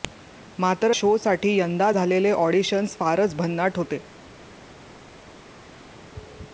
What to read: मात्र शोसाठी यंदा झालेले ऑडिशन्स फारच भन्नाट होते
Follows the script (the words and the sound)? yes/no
yes